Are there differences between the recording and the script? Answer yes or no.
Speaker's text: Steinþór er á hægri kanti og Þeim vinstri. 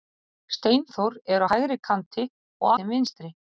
no